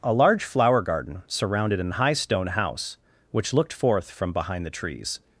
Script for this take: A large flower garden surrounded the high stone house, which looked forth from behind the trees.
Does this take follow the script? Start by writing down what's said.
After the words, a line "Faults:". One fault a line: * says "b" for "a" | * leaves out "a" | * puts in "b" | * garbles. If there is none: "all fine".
A large flower garden surrounded an high stone house, which looked forth from behind the trees.
Faults:
* says "an" for "the"